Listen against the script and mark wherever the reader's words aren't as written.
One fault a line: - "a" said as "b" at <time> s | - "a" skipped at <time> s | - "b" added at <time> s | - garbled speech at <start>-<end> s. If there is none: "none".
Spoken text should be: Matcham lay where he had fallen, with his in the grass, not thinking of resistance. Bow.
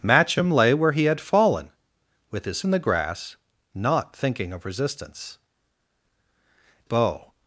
none